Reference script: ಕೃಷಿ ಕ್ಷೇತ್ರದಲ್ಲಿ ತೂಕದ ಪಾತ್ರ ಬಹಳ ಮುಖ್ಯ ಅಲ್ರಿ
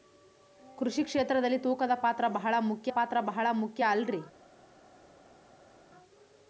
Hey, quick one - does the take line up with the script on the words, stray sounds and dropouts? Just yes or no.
no